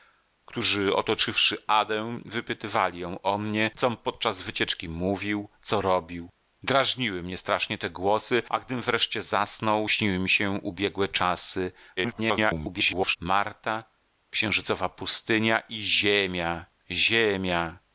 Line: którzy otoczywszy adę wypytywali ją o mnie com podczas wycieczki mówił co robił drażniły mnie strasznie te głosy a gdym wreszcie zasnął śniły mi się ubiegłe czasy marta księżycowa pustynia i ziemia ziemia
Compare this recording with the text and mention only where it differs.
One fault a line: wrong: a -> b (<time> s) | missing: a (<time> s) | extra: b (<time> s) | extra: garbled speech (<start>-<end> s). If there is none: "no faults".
extra: garbled speech (12.0-13.2 s)